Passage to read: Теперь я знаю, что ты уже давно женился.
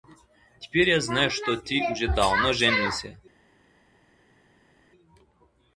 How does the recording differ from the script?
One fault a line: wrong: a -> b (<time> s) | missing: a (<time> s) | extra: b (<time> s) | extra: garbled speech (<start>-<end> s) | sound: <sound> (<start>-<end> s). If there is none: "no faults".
no faults